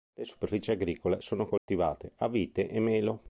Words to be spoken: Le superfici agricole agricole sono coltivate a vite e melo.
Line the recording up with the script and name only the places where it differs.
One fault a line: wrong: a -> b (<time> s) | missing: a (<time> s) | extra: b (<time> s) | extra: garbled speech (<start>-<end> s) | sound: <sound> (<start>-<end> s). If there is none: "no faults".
missing: agricole (1.2 s)
sound: dropout (1.6-1.7 s)